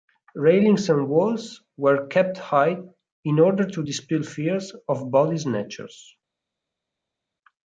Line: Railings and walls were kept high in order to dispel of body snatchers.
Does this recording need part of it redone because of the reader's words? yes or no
yes